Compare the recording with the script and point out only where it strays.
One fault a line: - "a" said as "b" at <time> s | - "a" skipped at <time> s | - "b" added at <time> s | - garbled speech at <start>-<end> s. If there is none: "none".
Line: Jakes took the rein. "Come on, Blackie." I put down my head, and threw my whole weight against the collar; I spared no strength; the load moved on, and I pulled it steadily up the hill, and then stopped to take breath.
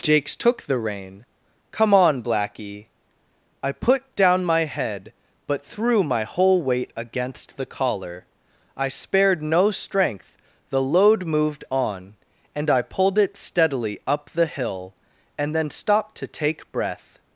- "and" said as "but" at 5.5 s